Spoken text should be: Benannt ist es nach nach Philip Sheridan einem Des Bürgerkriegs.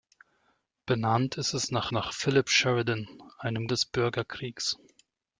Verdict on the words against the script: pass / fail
pass